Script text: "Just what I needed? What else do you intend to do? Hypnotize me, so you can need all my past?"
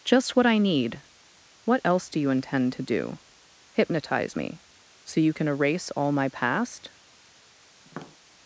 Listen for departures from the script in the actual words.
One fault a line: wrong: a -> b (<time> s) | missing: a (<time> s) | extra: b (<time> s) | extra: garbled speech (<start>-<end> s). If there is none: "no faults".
wrong: needed -> need (0.6 s)
wrong: need -> erase (5.5 s)